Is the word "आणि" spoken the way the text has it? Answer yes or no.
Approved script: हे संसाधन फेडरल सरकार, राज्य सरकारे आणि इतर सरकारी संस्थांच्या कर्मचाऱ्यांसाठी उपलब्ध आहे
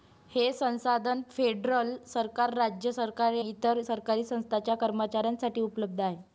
no